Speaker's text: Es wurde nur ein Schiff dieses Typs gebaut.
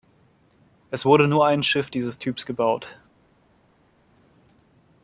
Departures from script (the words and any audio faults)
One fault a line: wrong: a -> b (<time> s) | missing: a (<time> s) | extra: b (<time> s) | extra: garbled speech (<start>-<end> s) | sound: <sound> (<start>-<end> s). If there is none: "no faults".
no faults